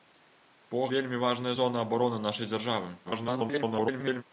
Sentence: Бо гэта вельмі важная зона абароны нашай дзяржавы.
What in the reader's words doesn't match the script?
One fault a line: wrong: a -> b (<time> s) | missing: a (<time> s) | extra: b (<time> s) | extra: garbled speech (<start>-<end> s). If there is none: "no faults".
missing: гэта (0.8 s)
extra: garbled speech (3.0-4.2 s)